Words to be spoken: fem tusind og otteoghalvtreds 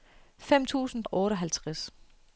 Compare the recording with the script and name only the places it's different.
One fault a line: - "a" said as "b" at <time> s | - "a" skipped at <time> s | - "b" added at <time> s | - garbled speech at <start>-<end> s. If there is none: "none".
none